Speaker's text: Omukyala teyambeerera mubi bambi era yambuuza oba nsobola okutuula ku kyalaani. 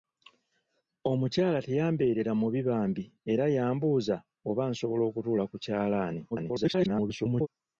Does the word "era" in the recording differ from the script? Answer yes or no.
no